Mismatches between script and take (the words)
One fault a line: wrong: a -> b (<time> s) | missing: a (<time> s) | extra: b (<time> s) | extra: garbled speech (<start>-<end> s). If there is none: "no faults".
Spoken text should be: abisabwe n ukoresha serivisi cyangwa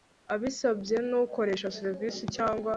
no faults